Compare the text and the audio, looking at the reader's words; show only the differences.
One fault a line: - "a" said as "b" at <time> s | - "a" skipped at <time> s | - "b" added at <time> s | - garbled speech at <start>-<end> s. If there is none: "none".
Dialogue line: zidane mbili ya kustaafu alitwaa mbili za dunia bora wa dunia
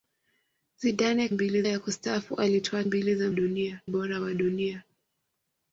none